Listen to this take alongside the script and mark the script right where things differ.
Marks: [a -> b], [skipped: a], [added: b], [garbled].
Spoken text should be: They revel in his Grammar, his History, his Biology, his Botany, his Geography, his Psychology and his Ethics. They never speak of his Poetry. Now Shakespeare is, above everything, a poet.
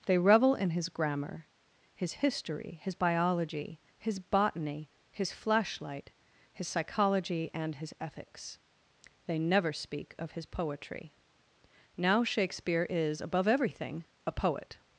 They revel in his Grammar, his History, his Biology, his Botany, his [Geography, -> Flashlight] his Psychology and his Ethics. They never speak of his Poetry. Now Shakespeare is, above everything, a poet.